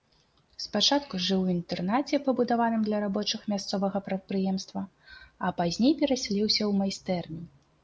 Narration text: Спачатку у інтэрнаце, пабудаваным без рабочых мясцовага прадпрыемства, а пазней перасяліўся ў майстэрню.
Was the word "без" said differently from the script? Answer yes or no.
yes